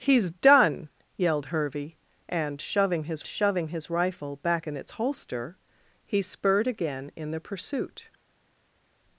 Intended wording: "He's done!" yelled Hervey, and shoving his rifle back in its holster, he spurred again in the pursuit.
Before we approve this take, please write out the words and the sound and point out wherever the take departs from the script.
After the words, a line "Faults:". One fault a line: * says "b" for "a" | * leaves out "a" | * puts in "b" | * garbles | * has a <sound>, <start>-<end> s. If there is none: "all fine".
"He's done!" yelled Hervey, and shoving his shoving his rifle back in its holster, he spurred again in the pursuit.
Faults:
* puts in "shoving his"